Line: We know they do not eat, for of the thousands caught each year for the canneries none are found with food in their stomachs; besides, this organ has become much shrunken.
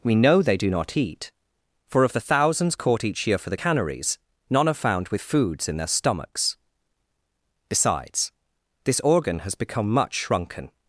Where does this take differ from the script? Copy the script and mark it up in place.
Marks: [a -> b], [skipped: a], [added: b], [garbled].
We know they do not eat, for of the thousands caught each year for the canneries none are found with [food -> foods] in their stomachs; besides, this organ has become much shrunken.